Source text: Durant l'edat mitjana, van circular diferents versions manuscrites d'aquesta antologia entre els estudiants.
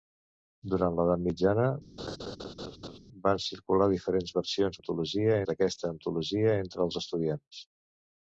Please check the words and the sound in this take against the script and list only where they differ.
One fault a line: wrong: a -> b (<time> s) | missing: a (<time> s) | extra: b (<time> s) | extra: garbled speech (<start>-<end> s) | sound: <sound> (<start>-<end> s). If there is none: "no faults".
sound: laugh (2.0-3.0 s)
wrong: manuscrites -> antologia (4.8 s)